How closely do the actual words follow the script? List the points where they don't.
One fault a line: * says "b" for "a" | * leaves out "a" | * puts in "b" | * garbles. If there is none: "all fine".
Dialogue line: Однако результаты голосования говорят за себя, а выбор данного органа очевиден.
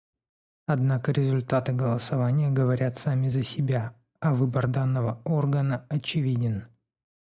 * puts in "сами"